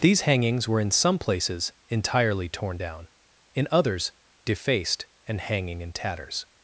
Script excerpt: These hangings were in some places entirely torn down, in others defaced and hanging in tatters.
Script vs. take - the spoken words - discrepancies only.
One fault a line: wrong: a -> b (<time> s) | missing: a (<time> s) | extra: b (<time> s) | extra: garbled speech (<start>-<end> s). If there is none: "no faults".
no faults